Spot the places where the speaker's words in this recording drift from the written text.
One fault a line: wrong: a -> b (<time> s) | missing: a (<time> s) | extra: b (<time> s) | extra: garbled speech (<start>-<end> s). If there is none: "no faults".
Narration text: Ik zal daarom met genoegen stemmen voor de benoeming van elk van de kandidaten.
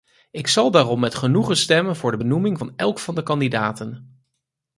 no faults